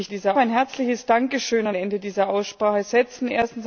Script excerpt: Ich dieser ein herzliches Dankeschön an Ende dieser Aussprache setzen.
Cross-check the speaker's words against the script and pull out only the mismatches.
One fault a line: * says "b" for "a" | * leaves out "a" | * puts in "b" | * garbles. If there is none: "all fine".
all fine